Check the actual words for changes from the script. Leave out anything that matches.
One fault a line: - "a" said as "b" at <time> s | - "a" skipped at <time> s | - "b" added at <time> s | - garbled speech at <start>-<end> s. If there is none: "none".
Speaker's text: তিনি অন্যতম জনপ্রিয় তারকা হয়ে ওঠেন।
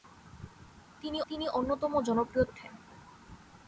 - "তিনি" added at 1.3 s
- "তারকা হয়ে" skipped at 2.4 s